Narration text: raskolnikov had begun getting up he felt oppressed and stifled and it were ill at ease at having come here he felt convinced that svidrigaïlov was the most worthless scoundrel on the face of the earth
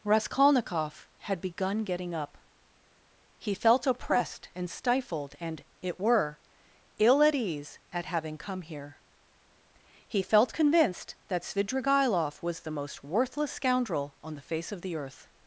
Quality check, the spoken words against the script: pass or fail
pass